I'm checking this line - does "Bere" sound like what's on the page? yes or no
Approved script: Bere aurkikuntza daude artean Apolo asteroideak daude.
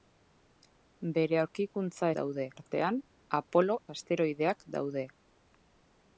yes